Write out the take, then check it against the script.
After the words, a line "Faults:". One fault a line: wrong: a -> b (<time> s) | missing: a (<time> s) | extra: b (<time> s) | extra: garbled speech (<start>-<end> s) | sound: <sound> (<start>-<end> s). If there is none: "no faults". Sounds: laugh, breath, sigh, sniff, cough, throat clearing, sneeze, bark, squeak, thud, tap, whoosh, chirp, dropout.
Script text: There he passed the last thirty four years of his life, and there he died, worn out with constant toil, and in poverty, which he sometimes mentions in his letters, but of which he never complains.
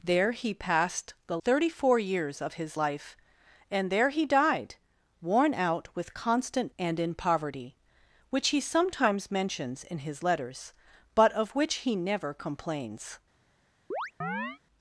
There he passed the thirty four years of his life, and there he died, worn out with constant and in poverty, which he sometimes mentions in his letters, but of which he never complains.
Faults:
missing: last (1.4 s)
missing: toil (6.7 s)
sound: chirp (13.9-14.6 s)